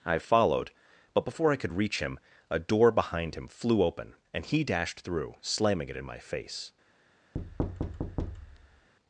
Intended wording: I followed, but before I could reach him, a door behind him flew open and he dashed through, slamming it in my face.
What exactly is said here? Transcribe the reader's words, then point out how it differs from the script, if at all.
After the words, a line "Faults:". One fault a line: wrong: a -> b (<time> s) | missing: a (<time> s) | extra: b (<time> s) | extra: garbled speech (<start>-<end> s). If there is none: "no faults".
I followed, but before I could reach him, a door behind him flew open and he dashed through, slamming it in my face.
Faults:
no faults